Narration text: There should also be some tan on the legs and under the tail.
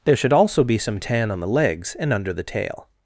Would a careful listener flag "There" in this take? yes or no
no